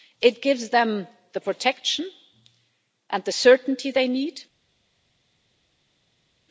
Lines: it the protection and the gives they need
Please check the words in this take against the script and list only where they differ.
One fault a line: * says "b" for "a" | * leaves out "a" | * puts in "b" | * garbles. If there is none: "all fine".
* puts in "gives them"
* says "certainty" for "gives"